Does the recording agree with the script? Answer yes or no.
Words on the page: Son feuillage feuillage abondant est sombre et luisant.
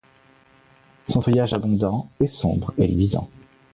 no